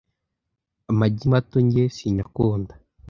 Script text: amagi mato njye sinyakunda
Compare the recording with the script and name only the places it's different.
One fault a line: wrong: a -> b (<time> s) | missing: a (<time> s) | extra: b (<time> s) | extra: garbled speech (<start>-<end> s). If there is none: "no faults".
no faults